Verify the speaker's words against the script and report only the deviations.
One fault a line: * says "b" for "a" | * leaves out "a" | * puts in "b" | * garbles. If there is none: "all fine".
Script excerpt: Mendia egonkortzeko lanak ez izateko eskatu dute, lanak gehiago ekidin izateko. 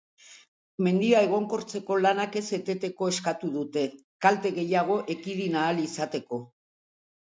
* says "eteteko" for "izateko"
* says "kalte" for "lanak"
* puts in "ahal"